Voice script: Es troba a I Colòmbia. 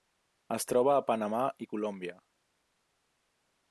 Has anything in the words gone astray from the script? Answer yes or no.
yes